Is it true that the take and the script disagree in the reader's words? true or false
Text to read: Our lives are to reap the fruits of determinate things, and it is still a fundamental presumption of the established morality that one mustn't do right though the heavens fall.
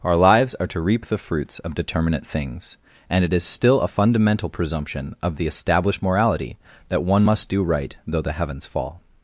true